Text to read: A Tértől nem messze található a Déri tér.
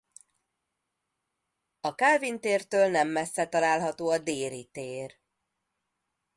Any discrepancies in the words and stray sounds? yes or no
yes